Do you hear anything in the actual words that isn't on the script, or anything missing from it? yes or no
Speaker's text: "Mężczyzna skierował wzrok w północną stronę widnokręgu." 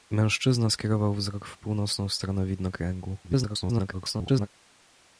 yes